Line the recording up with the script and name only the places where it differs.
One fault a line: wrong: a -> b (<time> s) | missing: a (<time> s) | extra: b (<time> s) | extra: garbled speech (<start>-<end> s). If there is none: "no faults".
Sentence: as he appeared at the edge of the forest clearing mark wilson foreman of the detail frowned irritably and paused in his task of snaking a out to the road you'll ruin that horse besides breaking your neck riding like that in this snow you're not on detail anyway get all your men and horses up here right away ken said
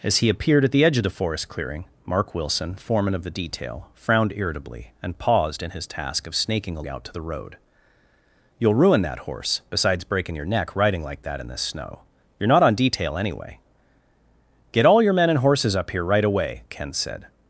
no faults